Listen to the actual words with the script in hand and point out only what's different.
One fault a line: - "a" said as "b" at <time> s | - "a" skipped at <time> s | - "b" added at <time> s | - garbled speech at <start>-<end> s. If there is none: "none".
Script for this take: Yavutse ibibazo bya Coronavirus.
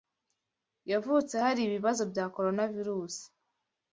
- "hari" added at 1.4 s